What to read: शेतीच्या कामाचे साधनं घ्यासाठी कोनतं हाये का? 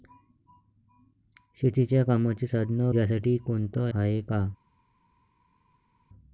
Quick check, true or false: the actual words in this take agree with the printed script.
true